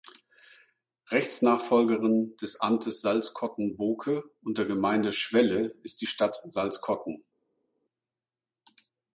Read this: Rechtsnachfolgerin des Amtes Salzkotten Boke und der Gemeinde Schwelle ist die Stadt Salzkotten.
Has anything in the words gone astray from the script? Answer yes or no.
no